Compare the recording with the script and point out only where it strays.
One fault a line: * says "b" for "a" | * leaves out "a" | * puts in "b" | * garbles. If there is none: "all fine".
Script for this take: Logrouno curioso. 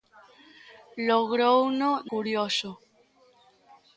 all fine